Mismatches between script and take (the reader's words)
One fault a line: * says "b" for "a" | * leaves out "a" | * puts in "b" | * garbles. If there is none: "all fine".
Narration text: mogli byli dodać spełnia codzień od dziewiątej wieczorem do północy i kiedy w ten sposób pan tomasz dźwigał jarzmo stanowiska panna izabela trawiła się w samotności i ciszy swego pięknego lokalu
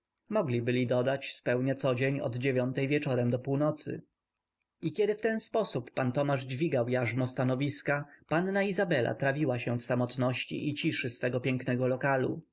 all fine